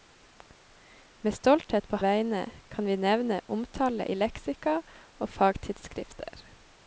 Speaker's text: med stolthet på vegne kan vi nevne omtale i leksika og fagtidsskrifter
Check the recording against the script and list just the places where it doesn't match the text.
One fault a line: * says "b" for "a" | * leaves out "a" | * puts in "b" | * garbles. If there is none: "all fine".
all fine